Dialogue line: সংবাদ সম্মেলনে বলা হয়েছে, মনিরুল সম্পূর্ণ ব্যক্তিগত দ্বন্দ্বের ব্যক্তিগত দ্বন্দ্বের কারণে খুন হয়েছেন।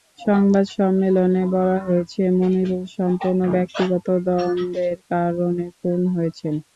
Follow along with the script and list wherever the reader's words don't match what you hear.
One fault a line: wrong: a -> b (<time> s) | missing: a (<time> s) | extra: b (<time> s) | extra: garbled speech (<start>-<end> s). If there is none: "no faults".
missing: ব্যক্তিগত দ্বন্দ্বের (5.0 s)